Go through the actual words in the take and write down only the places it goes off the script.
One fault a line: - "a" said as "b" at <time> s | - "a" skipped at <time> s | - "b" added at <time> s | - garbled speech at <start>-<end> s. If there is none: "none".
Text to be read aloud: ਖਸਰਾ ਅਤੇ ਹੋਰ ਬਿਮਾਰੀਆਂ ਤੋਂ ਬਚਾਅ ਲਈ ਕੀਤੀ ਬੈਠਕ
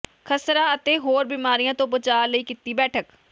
none